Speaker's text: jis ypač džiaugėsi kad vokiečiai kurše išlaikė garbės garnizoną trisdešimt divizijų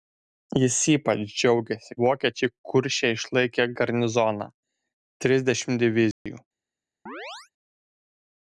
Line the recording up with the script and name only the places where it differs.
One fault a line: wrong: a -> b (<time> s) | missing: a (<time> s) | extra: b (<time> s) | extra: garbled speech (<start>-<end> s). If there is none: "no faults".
missing: kad (2.0 s)
missing: garbės (3.7 s)